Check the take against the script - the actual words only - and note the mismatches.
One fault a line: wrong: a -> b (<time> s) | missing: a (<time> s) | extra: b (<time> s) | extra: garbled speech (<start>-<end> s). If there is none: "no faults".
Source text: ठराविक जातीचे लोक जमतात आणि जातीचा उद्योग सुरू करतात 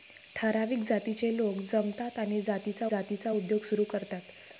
extra: जातीचा (2.8 s)